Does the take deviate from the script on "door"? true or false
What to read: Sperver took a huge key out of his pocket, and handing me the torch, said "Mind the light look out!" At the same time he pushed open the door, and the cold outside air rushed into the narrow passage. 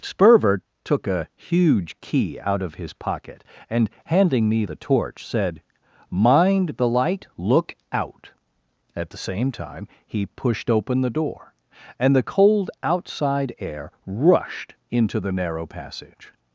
false